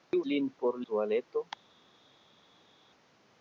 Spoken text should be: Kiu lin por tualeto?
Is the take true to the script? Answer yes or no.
yes